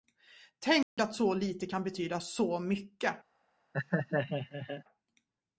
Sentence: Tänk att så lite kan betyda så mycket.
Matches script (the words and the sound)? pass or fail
fail